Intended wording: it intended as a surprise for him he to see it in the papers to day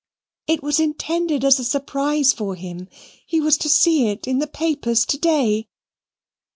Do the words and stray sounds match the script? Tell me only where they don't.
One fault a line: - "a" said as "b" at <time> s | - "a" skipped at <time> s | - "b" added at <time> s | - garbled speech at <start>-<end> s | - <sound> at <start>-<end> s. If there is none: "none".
- "was" added at 0.6 s
- "was" added at 3.4 s